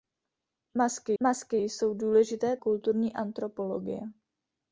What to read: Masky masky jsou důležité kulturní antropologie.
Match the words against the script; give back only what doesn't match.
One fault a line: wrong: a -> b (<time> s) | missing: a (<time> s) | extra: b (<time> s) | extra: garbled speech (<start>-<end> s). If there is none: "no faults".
no faults